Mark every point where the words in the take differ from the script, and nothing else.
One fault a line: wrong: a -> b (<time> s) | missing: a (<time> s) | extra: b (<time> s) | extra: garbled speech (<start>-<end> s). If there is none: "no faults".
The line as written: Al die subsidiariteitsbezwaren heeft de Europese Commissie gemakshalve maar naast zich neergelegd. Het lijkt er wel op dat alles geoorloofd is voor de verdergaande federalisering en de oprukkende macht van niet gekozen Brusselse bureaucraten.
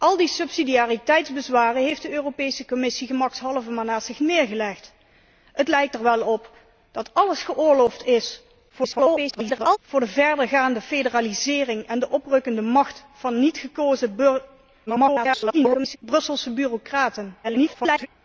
extra: garbled speech (8.7-9.8 s)
extra: garbled speech (14.9-16.0 s)
extra: garbled speech (17.4-18.1 s)